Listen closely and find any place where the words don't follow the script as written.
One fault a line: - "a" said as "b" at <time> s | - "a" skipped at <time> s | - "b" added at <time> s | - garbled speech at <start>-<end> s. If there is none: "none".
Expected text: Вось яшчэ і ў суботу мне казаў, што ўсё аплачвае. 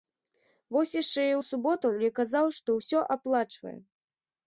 none